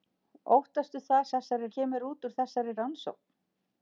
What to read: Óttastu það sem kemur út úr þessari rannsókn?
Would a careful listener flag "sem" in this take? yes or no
yes